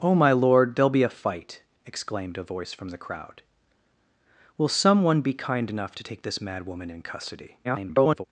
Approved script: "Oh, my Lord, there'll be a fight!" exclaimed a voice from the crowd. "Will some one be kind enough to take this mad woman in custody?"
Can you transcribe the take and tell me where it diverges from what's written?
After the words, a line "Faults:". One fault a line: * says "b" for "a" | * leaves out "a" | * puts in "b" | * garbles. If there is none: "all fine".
"Oh, my Lord, there'll be a fight!" exclaimed a voice from the crowd. "Will some one be kind enough to take this mad woman in custody?" [garbled]
Faults:
* garbles